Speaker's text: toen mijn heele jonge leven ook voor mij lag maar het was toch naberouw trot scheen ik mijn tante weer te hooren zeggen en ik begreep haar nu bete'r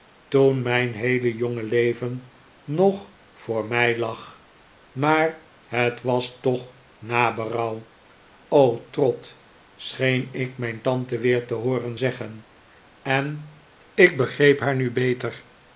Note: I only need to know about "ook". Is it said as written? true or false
false